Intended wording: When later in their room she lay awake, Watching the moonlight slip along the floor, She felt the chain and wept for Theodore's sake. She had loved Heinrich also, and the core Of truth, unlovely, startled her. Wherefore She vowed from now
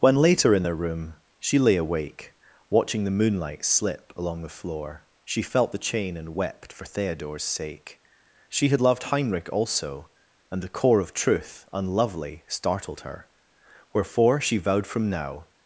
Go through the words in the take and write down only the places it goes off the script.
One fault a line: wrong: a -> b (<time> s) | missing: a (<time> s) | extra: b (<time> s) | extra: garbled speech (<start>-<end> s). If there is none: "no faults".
no faults